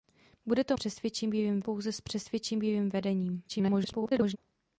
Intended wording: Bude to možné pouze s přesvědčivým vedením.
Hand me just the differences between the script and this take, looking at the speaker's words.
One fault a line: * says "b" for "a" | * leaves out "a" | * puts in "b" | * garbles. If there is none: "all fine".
* says "přesvědčivým" for "možné"
* garbles